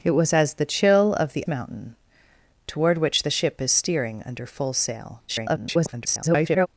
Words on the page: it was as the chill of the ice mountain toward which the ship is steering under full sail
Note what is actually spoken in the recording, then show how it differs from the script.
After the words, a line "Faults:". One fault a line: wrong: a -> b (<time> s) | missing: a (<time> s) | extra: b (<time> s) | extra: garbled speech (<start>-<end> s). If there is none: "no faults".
it was as the chill of the mountain toward which the ship is steering under full sail [garbled]
Faults:
missing: ice (1.4 s)
extra: garbled speech (5.3-6.7 s)